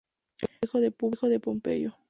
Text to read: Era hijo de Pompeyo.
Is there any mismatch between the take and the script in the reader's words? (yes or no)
no